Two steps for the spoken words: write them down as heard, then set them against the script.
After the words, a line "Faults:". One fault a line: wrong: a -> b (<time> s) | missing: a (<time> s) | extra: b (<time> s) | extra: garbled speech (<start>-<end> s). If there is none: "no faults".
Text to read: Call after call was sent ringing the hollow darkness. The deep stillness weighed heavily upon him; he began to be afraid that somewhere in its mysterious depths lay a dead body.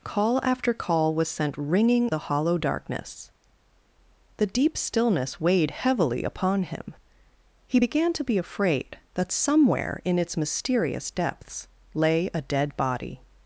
Call after call was sent ringing the hollow darkness. The deep stillness weighed heavily upon him; he began to be afraid that somewhere in its mysterious depths lay a dead body.
Faults:
no faults